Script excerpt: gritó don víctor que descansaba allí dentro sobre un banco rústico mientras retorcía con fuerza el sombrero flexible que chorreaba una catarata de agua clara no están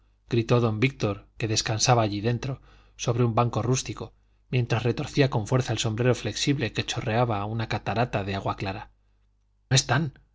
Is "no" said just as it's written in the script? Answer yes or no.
no